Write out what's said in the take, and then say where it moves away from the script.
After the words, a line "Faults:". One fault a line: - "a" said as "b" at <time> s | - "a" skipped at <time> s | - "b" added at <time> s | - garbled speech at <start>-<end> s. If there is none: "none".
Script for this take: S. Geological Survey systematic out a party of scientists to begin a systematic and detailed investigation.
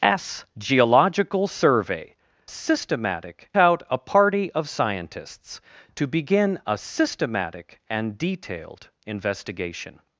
S. Geological Survey systematic out a party of scientists to begin a systematic and detailed investigation.
Faults:
none